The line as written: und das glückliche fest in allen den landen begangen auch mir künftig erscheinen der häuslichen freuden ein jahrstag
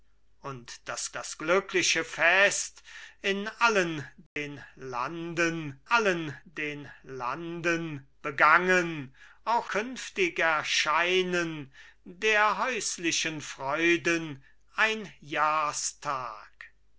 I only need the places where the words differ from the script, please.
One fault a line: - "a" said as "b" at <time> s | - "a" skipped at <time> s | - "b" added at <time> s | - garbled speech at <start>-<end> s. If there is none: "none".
- "das" added at 1.2 s
- "allen den landen" added at 5.9 s
- "mir" skipped at 9.7 s